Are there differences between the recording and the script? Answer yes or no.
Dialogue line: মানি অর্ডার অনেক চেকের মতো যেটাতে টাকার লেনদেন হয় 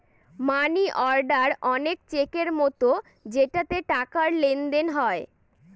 no